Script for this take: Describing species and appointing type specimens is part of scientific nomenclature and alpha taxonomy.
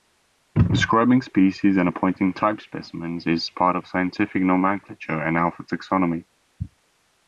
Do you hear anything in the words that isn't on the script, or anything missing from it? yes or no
no